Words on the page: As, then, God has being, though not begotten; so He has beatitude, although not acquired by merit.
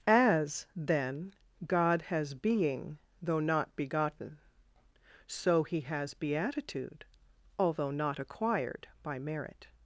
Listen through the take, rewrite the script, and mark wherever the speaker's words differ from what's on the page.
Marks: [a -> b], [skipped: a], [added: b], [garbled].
As, then, God has being, though not begotten; so He has beatitude, although not acquired by merit.